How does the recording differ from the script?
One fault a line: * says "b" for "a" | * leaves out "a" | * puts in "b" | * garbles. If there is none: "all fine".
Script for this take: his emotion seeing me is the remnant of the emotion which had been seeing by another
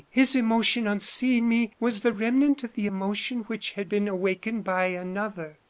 * puts in "on"
* says "was" for "is"
* says "awakened" for "seeing"